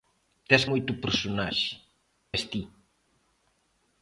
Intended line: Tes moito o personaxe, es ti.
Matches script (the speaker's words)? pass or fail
pass